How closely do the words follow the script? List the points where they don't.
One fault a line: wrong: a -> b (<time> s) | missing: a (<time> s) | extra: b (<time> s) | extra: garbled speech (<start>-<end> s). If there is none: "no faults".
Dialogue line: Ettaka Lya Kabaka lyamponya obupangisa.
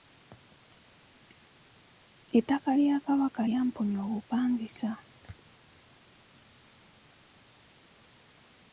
no faults